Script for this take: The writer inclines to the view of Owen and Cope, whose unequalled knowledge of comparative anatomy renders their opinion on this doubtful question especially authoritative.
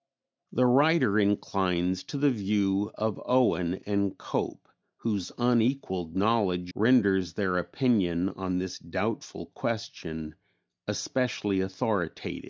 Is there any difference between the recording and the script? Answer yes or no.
yes